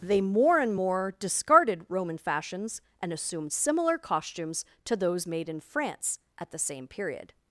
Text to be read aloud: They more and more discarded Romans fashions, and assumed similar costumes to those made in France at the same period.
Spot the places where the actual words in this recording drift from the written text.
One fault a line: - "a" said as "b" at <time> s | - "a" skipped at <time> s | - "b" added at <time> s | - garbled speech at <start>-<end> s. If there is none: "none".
- "Romans" said as "Roman" at 1.9 s